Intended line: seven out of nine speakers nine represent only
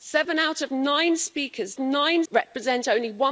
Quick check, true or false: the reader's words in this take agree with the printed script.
true